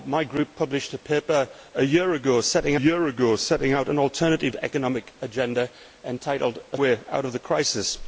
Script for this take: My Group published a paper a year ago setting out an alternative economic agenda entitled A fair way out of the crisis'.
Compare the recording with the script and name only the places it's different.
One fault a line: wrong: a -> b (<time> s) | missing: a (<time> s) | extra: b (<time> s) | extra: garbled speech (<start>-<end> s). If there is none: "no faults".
extra: year ago setting (2.7 s)
missing: fair (6.8 s)